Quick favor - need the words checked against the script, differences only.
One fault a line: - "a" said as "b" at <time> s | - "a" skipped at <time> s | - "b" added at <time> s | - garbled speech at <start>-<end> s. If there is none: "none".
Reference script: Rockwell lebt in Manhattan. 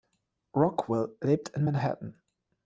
none